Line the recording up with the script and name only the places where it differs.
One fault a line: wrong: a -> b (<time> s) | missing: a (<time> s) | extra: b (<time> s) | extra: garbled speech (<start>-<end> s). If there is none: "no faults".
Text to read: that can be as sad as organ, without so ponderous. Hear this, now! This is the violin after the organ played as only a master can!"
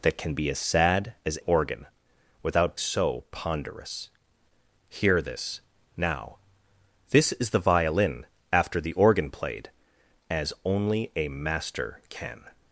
no faults